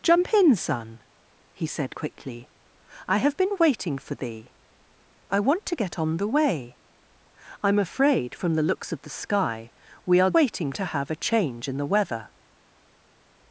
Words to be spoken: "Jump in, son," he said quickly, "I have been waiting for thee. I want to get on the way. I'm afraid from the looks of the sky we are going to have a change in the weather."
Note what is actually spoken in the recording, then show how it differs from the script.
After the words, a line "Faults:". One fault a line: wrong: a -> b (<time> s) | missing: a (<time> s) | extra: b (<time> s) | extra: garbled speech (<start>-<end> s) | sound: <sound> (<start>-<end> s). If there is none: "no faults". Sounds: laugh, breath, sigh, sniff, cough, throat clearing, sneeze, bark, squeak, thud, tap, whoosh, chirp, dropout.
"Jump in, son," he said quickly, "I have been waiting for thee. I want to get on the way. I'm afraid from the looks of the sky we are waiting to have a change in the weather."
Faults:
wrong: going -> waiting (10.3 s)